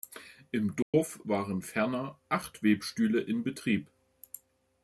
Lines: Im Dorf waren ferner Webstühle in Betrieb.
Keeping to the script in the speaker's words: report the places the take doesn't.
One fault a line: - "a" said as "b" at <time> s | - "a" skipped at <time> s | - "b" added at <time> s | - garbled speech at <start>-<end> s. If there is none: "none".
- "acht" added at 2.3 s